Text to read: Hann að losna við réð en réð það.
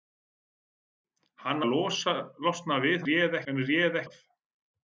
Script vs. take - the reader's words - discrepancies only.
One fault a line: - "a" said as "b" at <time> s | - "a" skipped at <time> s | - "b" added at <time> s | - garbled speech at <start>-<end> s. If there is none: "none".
none